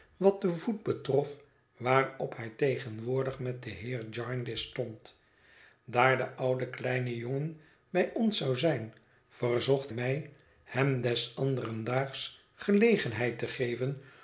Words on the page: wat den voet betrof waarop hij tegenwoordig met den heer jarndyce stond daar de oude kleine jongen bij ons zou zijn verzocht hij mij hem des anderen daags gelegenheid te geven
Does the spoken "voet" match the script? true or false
true